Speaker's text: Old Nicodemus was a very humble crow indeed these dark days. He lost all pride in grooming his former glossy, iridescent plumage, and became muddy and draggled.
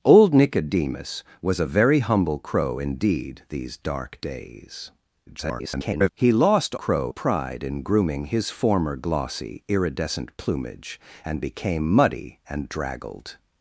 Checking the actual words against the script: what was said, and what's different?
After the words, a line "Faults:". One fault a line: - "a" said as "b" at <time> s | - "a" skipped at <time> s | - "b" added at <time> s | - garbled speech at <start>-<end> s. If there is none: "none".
Old Nicodemus was a very humble crow indeed these dark days. [garbled] He lost crow pride in grooming his former glossy, iridescent plumage, and became muddy and draggled.
Faults:
- garbled speech at 5.3-6.1 s
- "all" said as "crow" at 6.7 s